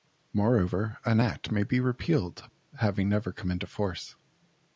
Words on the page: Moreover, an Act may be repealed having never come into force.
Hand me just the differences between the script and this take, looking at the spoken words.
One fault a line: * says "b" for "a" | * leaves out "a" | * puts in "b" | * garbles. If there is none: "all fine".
all fine